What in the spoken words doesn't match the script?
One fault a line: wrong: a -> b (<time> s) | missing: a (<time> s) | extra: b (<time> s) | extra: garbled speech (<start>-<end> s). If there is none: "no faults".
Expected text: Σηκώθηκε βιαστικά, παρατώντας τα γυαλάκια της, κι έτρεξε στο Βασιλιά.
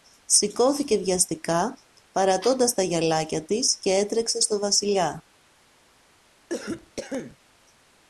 no faults